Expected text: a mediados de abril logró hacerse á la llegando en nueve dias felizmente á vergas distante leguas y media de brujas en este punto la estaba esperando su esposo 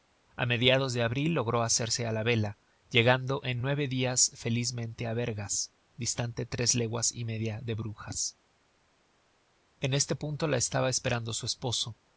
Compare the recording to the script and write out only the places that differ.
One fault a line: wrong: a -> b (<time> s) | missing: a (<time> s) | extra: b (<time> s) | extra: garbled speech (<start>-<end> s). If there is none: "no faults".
extra: vela (2.2 s)
extra: tres (6.4 s)